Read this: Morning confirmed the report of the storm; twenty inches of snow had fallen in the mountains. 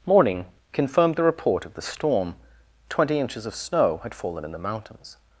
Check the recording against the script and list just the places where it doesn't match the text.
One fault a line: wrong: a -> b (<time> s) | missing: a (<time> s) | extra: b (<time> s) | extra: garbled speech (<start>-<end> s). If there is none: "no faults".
no faults